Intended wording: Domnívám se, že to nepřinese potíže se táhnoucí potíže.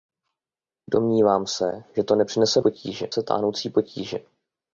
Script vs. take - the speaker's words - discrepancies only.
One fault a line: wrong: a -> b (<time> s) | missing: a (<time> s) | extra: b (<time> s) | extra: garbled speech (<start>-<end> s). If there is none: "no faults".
no faults